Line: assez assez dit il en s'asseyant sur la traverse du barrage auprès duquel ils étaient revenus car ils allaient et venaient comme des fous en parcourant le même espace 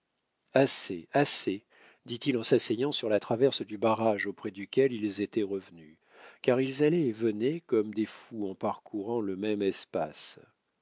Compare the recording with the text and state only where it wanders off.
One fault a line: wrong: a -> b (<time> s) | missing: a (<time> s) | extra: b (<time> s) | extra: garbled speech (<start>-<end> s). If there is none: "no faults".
no faults